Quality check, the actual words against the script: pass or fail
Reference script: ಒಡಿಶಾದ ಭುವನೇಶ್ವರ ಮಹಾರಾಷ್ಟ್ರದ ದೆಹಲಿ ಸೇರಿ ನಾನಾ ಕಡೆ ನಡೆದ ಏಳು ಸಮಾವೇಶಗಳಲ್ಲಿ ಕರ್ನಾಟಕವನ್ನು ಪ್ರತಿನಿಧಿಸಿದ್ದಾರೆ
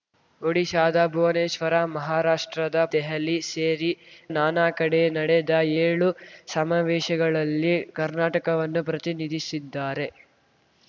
pass